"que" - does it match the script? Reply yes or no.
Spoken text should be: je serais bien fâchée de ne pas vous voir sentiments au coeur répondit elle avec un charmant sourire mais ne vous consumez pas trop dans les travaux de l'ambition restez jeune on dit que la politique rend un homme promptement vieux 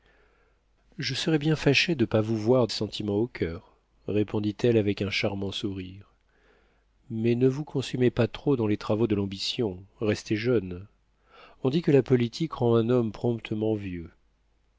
yes